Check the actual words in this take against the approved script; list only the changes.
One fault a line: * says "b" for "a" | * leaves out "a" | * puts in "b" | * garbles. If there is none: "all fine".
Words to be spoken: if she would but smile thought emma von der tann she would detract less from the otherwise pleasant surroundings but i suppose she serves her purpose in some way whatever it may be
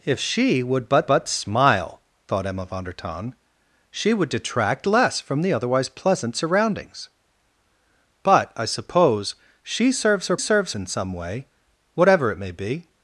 * puts in "but"
* says "serves" for "purpose"